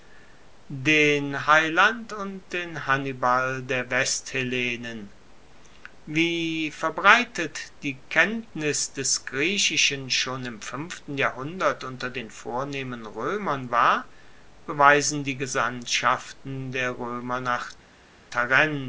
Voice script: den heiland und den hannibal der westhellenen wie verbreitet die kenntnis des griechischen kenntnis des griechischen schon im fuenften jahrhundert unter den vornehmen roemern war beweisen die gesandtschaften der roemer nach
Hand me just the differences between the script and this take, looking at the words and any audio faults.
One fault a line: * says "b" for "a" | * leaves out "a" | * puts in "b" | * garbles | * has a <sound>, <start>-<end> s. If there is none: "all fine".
* leaves out "kenntnis des griechischen"